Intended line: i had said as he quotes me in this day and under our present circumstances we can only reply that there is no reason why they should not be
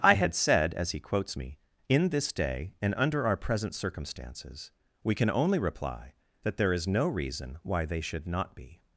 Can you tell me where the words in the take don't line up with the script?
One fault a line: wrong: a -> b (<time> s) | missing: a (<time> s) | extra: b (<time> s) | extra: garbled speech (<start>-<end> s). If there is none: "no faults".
no faults